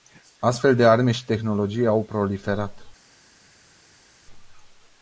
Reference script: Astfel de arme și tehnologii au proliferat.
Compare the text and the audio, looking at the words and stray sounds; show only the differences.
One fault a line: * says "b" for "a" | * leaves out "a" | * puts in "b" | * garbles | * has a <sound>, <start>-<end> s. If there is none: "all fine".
all fine